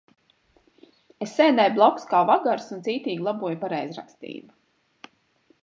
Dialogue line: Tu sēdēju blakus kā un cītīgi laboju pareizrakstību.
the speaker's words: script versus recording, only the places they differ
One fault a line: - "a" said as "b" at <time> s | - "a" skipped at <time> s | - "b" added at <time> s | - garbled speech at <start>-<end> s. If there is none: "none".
- "Tu" said as "Es" at 1.2 s
- "vagars" added at 2.3 s